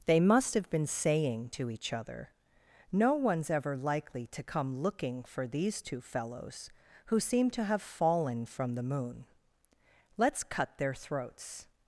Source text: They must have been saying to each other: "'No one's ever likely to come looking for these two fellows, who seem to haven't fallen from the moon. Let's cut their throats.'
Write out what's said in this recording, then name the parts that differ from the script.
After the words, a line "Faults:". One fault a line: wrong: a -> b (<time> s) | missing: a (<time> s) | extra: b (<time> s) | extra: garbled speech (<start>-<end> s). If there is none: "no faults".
They must have been saying to each other: "'No one's ever likely to come looking for these two fellows, who seem to have fallen from the moon. Let's cut their throats.'
Faults:
wrong: haven't -> have (7.6 s)